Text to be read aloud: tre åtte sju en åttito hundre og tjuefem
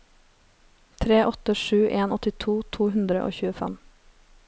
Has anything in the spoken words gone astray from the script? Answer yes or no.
yes